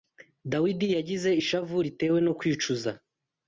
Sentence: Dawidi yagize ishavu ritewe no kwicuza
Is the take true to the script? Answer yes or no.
yes